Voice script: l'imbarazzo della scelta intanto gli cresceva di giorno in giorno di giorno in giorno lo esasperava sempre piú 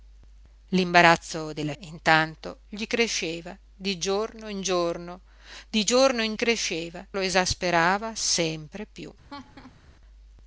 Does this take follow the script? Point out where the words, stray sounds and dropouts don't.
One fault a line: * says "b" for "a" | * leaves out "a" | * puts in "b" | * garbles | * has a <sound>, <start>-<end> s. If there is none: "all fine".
* leaves out "scelta"
* says "cresceva" for "giorno"
* has a laugh, 9.3-9.8 s